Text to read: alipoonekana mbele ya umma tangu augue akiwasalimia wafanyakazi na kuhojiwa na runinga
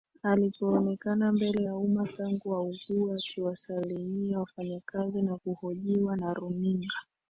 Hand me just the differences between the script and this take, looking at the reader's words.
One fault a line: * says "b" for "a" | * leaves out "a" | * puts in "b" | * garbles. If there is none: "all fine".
all fine